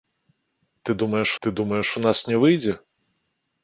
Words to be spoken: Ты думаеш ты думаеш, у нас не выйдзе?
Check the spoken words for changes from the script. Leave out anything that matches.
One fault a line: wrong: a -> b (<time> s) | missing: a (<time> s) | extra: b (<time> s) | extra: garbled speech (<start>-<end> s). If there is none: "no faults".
no faults